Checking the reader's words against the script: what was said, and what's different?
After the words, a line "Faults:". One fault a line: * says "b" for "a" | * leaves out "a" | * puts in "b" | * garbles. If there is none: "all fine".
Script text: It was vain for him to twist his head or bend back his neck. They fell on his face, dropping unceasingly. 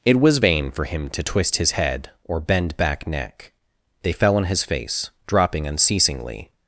It was vain for him to twist his head or bend back neck. They fell on his face, dropping unceasingly.
Faults:
* leaves out "his"